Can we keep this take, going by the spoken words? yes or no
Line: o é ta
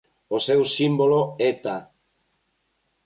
no